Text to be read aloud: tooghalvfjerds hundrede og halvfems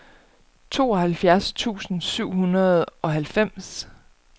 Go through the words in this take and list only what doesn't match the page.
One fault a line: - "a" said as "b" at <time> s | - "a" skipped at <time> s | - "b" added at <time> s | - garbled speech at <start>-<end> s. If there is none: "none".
- "tusind syv" added at 1.5 s